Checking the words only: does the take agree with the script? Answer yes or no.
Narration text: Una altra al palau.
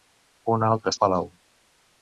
yes